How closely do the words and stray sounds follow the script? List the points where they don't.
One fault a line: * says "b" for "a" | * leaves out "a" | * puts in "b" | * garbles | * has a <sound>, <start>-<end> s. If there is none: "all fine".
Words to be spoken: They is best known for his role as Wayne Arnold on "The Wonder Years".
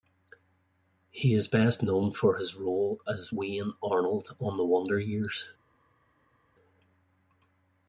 * says "He" for "They"